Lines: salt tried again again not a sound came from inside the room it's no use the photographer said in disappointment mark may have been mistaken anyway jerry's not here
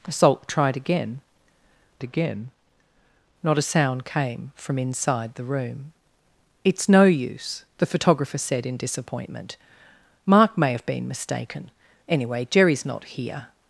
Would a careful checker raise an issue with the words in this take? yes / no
no